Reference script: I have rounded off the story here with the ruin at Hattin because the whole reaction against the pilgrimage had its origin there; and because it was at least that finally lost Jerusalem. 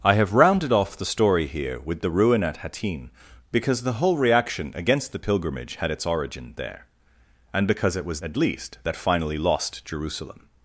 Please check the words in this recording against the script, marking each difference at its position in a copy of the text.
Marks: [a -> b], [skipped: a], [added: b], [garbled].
I have rounded off the story here with the ruin at Hattin because the whole reaction against the pilgrimage had its origin there; and because it was at least that finally lost Jerusalem.